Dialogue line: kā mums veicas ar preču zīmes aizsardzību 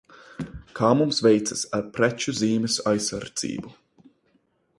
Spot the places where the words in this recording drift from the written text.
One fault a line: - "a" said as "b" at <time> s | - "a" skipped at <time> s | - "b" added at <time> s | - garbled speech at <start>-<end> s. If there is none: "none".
none